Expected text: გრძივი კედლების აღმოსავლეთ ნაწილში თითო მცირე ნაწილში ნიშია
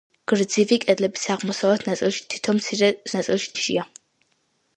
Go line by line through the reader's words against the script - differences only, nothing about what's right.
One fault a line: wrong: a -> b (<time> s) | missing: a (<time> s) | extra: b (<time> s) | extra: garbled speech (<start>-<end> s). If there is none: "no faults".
no faults